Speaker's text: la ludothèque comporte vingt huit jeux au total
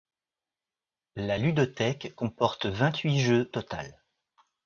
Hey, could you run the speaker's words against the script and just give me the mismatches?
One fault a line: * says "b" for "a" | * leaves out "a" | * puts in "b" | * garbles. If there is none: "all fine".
* leaves out "au"